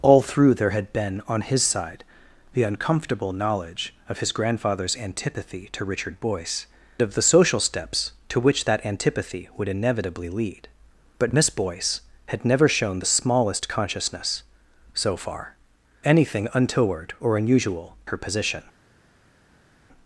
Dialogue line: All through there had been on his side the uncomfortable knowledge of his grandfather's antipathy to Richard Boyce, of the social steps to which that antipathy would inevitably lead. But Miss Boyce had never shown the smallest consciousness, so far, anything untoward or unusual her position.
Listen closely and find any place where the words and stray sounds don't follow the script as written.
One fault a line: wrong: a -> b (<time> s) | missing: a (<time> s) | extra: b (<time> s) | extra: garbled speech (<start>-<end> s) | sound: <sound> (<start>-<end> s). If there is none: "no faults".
no faults